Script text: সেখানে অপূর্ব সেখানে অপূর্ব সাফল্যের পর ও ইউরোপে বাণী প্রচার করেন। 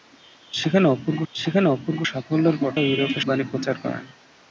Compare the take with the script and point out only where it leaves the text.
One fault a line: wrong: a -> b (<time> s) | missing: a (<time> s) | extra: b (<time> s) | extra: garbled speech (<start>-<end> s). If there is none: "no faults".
no faults